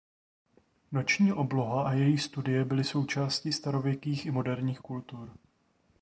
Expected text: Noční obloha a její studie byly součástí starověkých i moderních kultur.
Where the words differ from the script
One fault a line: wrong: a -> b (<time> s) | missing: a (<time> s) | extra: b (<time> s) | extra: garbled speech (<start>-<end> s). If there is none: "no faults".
no faults